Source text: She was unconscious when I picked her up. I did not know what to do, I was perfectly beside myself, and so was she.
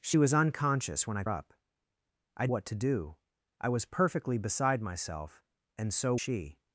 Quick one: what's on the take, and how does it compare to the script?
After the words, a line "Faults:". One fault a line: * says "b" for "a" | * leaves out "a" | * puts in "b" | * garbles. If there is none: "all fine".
She was unconscious when I up. I what to do, I was perfectly beside myself, and so she.
Faults:
* leaves out "picked her"
* leaves out "did not know"
* leaves out "was"